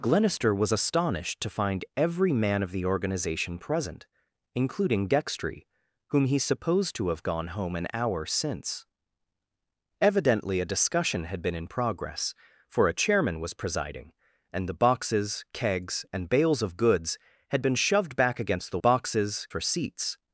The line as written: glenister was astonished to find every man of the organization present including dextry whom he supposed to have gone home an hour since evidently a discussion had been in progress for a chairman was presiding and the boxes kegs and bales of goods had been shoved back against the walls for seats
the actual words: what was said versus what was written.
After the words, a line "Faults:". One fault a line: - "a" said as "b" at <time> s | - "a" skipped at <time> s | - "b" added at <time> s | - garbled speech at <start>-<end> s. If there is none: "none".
glenister was astonished to find every man of the organization present including dextry whom he supposed to have gone home an hour since evidently a discussion had been in progress for a chairman was presiding and the boxes kegs and bales of goods had been shoved back against the boxes for seats
Faults:
- "walls" said as "boxes" at 18.8 s